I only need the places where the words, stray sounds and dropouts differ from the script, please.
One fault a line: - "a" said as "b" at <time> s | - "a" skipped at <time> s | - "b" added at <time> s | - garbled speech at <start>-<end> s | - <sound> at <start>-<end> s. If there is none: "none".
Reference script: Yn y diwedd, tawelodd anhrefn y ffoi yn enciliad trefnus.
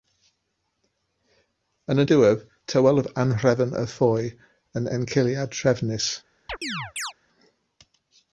- chirp at 6.5-7.1 s